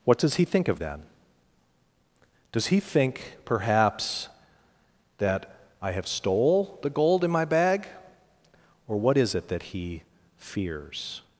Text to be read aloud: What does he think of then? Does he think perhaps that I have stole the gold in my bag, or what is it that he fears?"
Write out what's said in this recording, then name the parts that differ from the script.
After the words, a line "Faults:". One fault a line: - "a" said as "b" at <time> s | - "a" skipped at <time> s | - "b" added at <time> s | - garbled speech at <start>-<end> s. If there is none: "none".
What does he think of then? Does he think perhaps that I have stole the gold in my bag, or what is it that he fears?"
Faults:
none